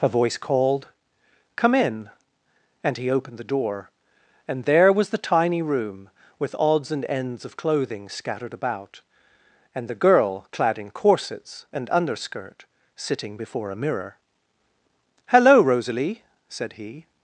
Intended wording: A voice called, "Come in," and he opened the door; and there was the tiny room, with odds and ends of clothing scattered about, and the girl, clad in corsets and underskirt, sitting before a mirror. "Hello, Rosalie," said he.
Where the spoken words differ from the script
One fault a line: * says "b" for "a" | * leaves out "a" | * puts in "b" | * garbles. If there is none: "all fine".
all fine